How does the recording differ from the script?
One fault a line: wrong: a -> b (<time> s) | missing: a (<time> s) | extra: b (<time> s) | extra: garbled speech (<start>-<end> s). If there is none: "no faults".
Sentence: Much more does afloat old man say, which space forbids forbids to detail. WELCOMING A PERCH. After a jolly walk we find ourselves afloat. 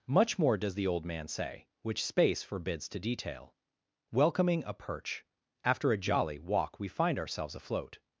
wrong: afloat -> the (0.8 s)
missing: forbids (2.9 s)